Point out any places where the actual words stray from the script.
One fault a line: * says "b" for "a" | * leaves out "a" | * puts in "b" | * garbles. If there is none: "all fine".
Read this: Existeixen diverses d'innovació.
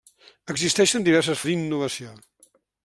all fine